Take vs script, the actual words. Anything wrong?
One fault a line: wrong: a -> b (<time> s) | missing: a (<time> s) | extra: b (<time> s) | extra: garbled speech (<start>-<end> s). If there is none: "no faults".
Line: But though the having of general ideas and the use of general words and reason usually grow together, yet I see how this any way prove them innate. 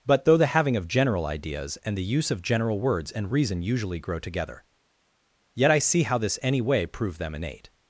no faults